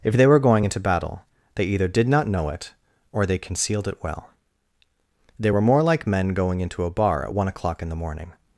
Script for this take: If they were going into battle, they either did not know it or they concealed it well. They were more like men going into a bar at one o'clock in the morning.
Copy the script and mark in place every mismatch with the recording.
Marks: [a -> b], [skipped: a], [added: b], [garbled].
If they were going into battle, they either did not know it or they concealed it well. They were more like men going into a bar at one o'clock in the morning.